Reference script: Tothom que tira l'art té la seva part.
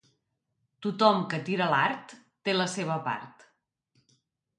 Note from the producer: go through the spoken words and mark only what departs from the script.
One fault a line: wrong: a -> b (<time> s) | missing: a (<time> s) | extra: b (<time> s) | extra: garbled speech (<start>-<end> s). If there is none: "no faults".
no faults